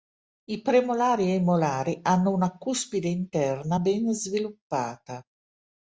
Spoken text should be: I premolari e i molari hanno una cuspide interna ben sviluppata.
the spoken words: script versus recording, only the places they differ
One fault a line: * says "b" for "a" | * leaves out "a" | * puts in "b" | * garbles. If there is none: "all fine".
all fine